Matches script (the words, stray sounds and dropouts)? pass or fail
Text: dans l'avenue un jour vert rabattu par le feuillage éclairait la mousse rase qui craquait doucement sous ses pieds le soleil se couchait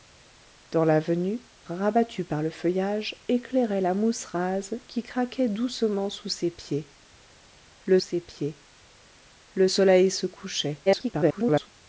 fail